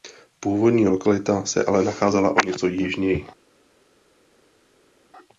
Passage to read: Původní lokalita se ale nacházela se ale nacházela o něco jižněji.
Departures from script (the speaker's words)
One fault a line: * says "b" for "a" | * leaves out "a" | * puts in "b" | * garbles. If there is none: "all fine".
* leaves out "se ale nacházela"